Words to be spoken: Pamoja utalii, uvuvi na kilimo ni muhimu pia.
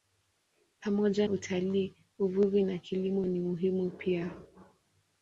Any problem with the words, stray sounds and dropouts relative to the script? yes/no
no